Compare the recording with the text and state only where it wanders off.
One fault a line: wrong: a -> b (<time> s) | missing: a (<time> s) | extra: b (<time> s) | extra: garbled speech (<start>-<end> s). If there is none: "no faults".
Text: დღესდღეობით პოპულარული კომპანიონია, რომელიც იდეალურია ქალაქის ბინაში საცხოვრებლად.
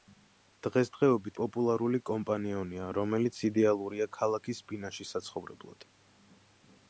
no faults